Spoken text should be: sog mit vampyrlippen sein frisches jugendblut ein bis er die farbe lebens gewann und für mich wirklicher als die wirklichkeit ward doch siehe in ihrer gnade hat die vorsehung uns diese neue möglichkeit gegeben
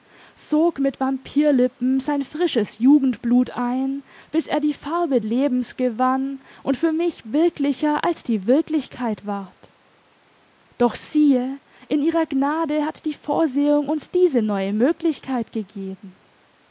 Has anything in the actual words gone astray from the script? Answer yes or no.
no